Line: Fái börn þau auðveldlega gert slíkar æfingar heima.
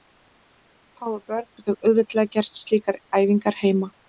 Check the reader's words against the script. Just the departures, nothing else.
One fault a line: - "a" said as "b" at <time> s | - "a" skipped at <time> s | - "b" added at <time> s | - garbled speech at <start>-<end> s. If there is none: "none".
none